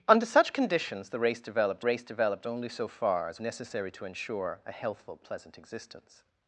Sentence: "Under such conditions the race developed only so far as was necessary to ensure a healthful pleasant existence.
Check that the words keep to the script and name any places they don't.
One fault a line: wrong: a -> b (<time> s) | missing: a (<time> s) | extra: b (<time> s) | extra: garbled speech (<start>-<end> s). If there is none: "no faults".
extra: race developed (1.8 s)
missing: was (3.4 s)